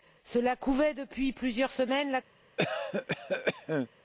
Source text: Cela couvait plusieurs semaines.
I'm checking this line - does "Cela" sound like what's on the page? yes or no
yes